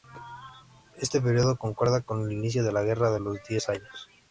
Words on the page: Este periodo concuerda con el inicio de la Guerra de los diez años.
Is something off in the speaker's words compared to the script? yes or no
no